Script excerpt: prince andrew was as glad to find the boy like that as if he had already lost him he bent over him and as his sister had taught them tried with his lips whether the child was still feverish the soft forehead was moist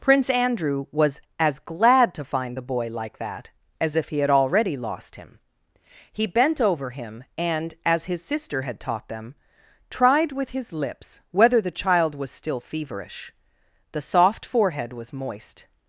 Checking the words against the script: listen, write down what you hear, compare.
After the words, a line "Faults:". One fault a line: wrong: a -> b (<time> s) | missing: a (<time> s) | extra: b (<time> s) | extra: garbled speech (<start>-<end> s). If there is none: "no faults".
prince andrew was as glad to find the boy like that as if he had already lost him he bent over him and as his sister had taught them tried with his lips whether the child was still feverish the soft forehead was moist
Faults:
no faults